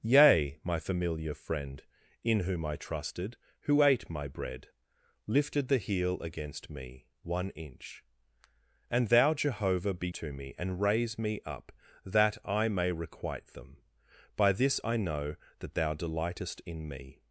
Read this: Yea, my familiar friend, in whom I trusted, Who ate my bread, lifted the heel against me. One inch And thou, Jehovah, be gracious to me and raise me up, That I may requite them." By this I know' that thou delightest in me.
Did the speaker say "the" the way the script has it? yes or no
yes